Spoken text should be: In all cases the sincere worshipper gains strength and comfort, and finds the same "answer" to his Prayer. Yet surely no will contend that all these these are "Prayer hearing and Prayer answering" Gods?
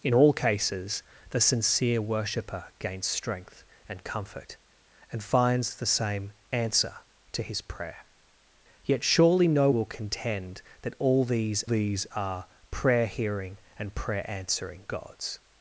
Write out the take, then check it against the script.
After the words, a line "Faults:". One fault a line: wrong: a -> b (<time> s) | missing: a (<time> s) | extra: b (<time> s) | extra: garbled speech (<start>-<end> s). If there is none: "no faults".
In all cases the sincere worshipper gains strength and comfort, and finds the same "answer" to his Prayer. Yet surely no will contend that all these these are "Prayer hearing and Prayer answering" Gods?
Faults:
no faults